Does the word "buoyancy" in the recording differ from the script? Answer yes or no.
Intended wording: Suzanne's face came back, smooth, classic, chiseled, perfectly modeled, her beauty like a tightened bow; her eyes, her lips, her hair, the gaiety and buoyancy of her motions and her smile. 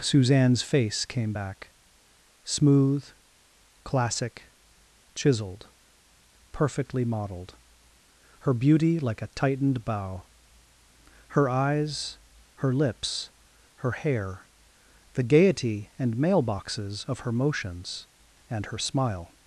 yes